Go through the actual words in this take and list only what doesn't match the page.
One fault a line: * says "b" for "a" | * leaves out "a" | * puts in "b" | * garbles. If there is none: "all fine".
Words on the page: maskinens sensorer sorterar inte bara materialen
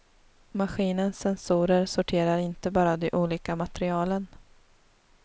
* puts in "de olika"